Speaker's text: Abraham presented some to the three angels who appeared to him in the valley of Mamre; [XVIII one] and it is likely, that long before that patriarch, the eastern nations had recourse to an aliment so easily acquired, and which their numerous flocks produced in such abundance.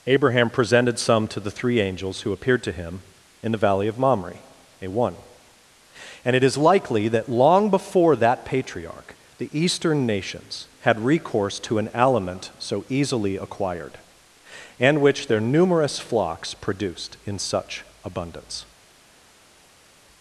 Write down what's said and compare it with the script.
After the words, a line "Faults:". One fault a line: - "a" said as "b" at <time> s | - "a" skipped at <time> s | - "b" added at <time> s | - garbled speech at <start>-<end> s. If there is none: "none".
Abraham presented some to the three angels who appeared to him in the valley of Mamre; [A one] and it is likely, that long before that patriarch, the eastern nations had recourse to an aliment so easily acquired, and which their numerous flocks produced in such abundance.
Faults:
- "XVIII" said as "A" at 4.8 s